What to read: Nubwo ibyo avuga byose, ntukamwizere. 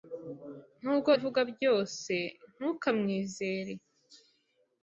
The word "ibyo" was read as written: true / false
false